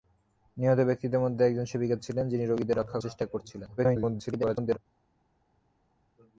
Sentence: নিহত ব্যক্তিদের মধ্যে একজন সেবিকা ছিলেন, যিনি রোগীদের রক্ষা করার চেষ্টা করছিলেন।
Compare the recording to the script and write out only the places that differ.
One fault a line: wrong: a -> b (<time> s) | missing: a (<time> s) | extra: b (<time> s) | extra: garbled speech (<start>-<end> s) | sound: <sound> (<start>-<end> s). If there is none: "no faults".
missing: করার (3.0 s)
extra: garbled speech (3.8-4.8 s)